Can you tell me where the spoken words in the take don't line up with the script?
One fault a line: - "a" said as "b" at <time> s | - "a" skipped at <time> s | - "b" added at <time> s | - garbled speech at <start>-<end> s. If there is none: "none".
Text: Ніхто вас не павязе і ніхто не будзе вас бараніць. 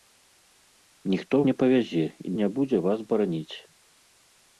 - "вас" skipped at 1.4 s
- "ніхто" skipped at 2.4 s